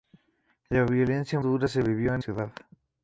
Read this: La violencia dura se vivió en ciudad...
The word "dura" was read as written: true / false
true